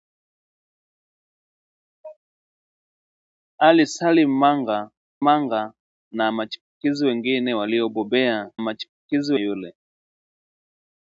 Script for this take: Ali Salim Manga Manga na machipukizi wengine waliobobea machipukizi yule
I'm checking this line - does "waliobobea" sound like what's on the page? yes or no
yes